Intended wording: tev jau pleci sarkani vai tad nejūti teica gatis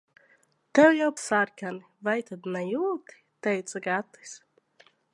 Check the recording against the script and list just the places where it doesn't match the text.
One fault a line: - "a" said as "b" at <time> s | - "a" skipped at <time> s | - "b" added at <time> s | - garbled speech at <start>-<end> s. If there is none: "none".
- "pleci" skipped at 1.1 s